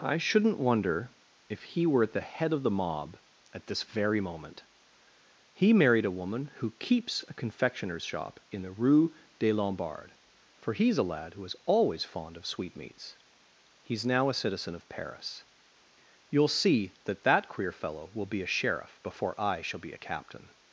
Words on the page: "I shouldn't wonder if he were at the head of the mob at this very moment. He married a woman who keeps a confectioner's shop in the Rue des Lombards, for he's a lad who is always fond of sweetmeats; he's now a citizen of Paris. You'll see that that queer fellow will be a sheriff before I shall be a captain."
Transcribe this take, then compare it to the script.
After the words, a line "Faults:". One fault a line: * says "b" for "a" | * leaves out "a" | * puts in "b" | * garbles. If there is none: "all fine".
"I shouldn't wonder if he were at the head of the mob at this very moment. He married a woman who keeps a confectioner's shop in the Rue des Lombards, for he's a lad who is always fond of sweetmeats; he's now a citizen of Paris. You'll see that that queer fellow will be a sheriff before I shall be a captain."
Faults:
all fine